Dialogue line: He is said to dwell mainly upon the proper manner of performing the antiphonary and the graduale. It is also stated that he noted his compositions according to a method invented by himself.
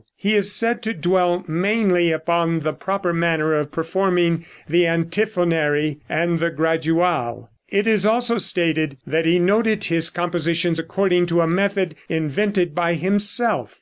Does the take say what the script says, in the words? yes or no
yes